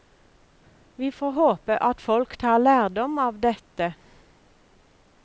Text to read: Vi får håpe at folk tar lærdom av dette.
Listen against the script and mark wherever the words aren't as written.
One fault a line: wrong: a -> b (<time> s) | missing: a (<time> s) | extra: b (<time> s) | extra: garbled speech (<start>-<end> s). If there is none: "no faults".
no faults